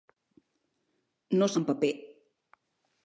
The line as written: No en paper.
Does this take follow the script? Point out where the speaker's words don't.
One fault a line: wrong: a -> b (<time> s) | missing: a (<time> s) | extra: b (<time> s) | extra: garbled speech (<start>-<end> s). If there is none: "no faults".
no faults